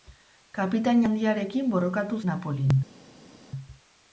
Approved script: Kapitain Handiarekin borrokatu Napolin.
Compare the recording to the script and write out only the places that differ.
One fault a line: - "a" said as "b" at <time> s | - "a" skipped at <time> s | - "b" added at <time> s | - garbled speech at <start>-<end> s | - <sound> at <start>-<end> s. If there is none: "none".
none